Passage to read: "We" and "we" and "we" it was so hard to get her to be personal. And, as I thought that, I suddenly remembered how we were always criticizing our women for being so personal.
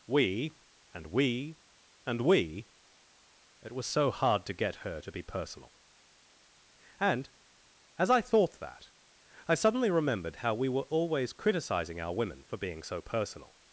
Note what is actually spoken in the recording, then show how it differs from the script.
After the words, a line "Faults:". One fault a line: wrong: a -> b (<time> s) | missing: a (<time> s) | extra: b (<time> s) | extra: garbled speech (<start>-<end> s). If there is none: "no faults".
"We" and "we" and "we" it was so hard to get her to be personal. And, as I thought that, I suddenly remembered how we were always criticizing our women for being so personal.
Faults:
no faults